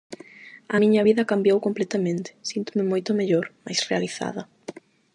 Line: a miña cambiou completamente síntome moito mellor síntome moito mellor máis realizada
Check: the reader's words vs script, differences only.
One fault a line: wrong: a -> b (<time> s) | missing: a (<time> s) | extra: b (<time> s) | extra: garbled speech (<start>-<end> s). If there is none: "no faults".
extra: vida (1.1 s)
missing: síntome moito mellor (3.4 s)